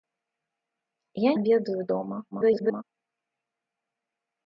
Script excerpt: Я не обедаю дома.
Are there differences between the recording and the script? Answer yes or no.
yes